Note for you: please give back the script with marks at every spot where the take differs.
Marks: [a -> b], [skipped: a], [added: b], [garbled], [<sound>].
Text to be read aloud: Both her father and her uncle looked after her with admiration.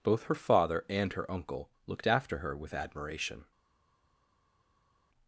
Both her father and her uncle looked after her with admiration.